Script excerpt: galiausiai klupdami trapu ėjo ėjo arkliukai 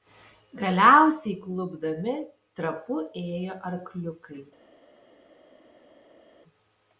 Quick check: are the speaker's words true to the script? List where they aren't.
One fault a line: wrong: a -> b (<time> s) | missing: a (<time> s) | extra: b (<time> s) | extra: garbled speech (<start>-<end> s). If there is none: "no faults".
missing: ėjo (3.6 s)